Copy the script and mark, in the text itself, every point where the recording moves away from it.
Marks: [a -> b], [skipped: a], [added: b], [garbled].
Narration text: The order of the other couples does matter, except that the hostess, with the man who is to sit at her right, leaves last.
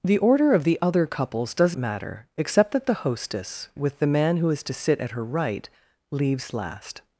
The order of the other couples does matter, except that the hostess, with the man who is to sit at her right, leaves last.